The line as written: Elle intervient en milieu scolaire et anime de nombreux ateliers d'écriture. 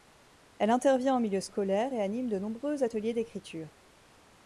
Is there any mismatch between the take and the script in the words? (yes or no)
no